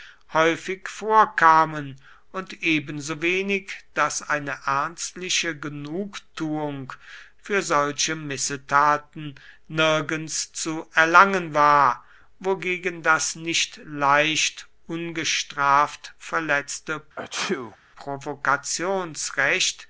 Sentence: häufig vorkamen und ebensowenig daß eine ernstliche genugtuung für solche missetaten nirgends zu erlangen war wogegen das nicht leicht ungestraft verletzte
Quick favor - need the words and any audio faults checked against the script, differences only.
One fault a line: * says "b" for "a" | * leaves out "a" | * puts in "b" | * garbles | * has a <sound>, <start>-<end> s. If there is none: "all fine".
* has a sneeze, 17.2-17.8 s